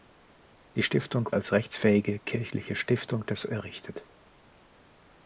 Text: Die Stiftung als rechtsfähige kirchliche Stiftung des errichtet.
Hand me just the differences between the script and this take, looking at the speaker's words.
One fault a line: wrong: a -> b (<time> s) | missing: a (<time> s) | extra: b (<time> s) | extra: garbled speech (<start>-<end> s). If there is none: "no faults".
no faults